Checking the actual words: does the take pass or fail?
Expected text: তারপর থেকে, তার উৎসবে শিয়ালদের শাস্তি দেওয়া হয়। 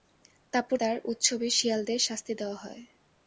fail